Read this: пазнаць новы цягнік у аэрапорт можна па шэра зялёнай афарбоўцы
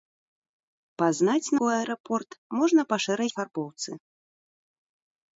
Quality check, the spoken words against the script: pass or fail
fail